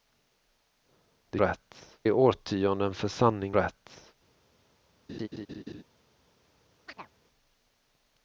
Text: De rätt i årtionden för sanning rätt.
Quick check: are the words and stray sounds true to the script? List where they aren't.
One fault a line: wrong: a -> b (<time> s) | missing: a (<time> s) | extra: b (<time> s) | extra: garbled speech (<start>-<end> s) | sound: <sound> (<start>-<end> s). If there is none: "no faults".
sound: laugh (5.1-5.8 s)
sound: chirp (6.9-7.1 s)